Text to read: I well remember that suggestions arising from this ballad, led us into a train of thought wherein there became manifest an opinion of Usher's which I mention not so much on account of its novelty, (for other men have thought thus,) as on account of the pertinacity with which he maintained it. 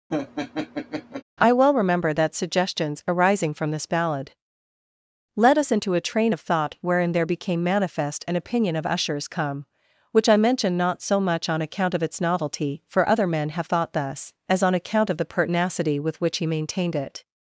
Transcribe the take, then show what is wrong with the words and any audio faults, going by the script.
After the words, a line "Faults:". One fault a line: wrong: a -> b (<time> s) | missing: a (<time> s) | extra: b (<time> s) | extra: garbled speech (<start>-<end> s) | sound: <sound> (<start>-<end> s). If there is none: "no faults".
I well remember that suggestions arising from this ballad, led us into a train of thought wherein there became manifest an opinion of Usher's come which I mention not so much on account of its novelty, (for other men have thought thus,) as on account of the pertinacity with which he maintained it.
Faults:
sound: laugh (0.1-1.2 s)
extra: come (9.3 s)